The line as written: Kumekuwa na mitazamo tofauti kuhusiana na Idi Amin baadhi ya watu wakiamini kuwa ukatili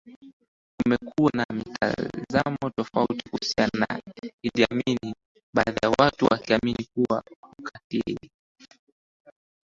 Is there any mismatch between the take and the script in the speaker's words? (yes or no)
no